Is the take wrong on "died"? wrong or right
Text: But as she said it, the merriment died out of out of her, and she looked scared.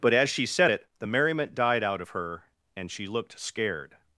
right